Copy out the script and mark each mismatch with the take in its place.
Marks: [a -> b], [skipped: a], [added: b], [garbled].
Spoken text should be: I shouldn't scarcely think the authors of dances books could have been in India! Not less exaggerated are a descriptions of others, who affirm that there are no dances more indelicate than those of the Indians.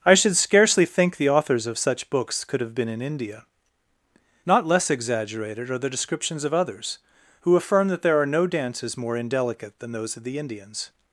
I [shouldn't -> should] scarcely think the authors of [dances -> such] books could have been in India! Not less exaggerated are [a -> the] descriptions of others, who affirm that there are no dances more indelicate than those of the Indians.